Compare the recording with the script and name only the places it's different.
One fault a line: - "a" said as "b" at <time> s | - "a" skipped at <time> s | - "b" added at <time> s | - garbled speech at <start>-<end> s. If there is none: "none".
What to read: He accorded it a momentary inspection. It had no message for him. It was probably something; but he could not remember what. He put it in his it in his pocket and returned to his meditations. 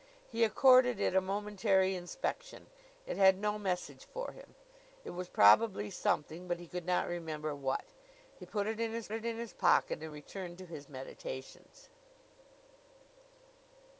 none